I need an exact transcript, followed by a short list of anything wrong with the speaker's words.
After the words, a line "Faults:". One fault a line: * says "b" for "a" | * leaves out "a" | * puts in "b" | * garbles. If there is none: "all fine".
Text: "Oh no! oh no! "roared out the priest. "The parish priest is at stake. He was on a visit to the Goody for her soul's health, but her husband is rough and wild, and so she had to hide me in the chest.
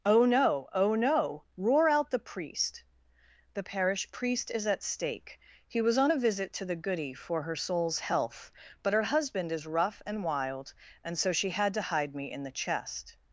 "Oh no! oh no! "roar out the priest. "The parish priest is at stake. He was on a visit to the Goody for her soul's health, but her husband is rough and wild, and so she had to hide me in the chest.
Faults:
* says "roar" for "roared"